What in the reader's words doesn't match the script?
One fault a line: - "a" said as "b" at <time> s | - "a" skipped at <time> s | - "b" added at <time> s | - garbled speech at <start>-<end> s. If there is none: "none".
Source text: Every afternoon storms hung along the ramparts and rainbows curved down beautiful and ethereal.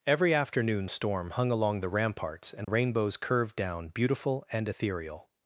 - "storms" said as "storm" at 0.9 s